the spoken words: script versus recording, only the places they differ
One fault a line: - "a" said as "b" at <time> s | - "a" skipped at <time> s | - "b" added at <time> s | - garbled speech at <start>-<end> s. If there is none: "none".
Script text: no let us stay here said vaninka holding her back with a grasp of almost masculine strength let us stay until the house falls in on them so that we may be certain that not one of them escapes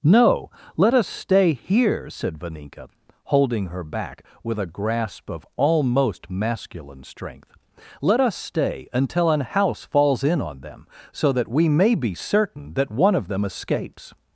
- "the" said as "an" at 9.3 s
- "not" skipped at 12.9 s